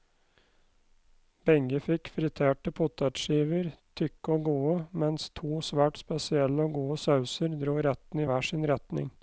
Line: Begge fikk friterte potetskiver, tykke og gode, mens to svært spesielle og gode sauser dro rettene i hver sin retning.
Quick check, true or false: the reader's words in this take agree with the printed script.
true